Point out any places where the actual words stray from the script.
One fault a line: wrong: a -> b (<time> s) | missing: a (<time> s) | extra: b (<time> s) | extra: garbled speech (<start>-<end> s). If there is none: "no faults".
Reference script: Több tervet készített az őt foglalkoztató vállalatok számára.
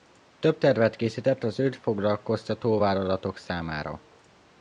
no faults